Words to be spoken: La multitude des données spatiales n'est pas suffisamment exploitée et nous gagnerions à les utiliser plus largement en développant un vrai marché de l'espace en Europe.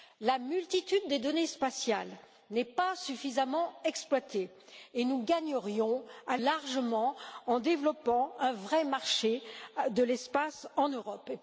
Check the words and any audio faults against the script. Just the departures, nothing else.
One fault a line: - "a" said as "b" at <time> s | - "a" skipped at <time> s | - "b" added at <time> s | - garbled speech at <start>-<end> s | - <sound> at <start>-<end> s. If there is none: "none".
- "les utiliser plus" skipped at 6.3 s